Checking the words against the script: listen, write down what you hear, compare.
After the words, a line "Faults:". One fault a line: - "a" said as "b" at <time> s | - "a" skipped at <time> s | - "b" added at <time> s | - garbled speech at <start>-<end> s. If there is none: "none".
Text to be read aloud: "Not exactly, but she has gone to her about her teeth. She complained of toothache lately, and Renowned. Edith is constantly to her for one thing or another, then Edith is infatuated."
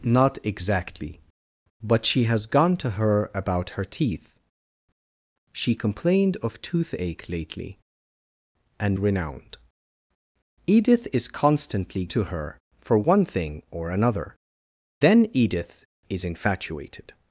"Not exactly, but she has gone to her about her teeth. She complained of toothache lately, and Renowned. Edith is constantly to her for one thing or another, then Edith is infatuated."
Faults:
none